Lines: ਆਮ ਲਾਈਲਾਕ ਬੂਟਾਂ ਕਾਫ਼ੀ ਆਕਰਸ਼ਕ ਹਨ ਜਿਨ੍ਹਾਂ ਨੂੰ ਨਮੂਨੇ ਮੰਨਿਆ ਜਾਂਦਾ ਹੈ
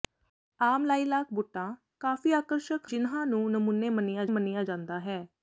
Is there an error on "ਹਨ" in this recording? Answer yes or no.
yes